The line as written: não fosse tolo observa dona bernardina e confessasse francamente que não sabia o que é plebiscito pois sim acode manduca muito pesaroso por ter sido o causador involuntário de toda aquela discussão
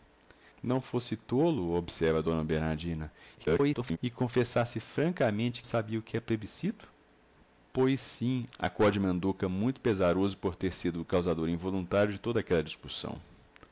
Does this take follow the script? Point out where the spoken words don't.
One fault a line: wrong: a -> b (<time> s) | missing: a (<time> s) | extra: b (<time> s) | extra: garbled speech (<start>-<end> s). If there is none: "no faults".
extra: garbled speech (3.4-4.0 s)
missing: que não (5.6 s)